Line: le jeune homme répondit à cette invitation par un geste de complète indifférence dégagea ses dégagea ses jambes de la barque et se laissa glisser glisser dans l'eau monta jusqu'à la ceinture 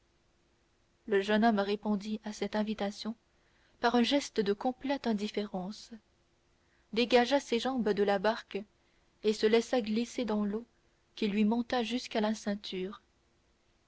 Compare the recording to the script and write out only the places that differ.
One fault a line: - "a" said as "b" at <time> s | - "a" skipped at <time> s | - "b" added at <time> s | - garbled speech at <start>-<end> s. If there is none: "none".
- "dégagea ses" skipped at 7.6 s
- "glisser" skipped at 10.3 s
- "qui lui" added at 11.1 s